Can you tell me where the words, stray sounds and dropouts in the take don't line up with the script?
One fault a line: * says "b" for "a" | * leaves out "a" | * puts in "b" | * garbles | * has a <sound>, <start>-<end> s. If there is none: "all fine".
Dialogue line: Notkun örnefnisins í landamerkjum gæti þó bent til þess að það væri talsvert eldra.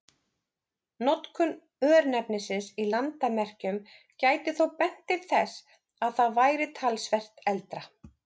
all fine